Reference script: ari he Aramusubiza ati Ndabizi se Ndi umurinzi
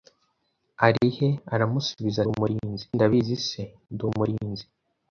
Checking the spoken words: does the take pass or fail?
fail